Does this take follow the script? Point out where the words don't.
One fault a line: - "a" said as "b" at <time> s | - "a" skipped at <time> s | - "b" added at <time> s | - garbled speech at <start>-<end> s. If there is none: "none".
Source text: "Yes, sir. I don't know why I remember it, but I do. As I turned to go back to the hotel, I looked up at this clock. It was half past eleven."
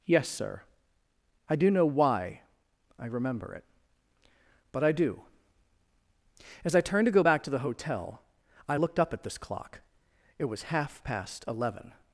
- "don't" said as "do" at 1.6 s